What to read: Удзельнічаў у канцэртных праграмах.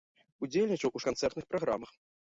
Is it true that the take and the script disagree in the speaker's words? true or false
false